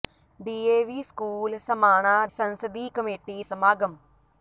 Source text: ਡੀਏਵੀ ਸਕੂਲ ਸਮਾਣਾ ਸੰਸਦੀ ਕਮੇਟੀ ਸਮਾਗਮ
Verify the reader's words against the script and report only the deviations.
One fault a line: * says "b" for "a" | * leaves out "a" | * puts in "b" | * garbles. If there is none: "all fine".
all fine